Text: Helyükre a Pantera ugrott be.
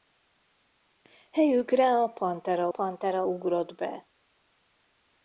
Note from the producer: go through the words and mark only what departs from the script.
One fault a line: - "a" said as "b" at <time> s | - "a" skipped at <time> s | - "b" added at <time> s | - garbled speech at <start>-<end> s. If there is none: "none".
- "Pantera" added at 2.7 s